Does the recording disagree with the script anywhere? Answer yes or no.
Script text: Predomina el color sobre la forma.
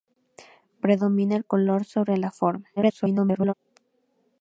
yes